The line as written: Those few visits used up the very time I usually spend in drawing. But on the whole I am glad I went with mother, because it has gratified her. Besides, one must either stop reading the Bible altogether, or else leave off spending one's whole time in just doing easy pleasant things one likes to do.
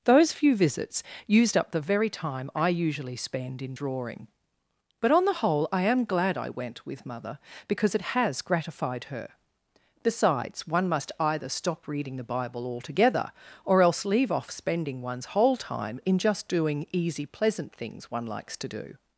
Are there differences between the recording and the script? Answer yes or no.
no